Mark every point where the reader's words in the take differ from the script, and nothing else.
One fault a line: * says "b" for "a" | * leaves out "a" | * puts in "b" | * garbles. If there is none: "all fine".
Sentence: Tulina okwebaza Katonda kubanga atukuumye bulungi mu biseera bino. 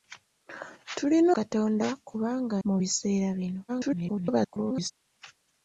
* leaves out "okwebaza"
* leaves out "atukuumye bulungi"
* garbles